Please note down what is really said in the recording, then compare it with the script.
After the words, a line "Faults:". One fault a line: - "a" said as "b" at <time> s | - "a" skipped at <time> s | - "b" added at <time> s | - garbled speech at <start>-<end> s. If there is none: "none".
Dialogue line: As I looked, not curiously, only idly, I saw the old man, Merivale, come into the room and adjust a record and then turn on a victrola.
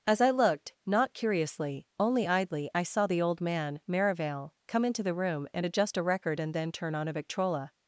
As I looked, not curiously, only idly, I saw the old man, Merivale, come into the room and adjust a record and then turn on a victrola.
Faults:
none